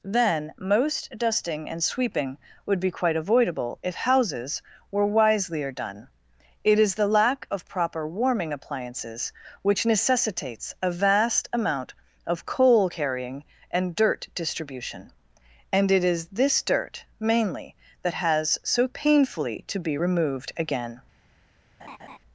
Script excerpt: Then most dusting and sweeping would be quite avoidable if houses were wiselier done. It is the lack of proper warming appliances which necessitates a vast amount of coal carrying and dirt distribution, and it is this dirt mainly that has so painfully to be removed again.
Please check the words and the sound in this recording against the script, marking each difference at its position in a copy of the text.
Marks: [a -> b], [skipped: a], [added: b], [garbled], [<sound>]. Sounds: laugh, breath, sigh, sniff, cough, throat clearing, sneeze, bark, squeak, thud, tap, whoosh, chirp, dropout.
Then most dusting and sweeping would be quite avoidable if houses were wiselier done. It is the lack of proper warming appliances which necessitates a vast amount of coal carrying and dirt distribution, and it is this dirt mainly that has so painfully to be removed again. [laugh]